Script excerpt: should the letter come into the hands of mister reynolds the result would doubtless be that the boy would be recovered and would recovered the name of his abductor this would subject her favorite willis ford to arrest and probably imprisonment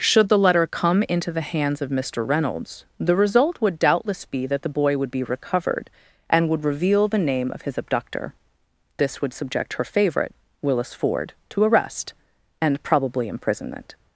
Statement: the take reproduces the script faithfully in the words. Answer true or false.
false